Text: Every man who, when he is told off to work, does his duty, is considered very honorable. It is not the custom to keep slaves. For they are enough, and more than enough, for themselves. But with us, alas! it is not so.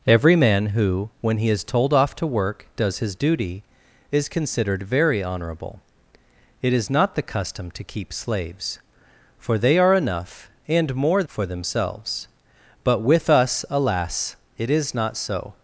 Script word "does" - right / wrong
right